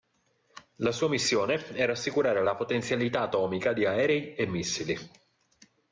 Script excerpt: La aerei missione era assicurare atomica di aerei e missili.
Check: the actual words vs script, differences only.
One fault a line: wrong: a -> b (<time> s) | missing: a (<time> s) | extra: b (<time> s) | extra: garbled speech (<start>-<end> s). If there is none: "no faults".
wrong: aerei -> sua (0.9 s)
extra: la potenzialità (2.4 s)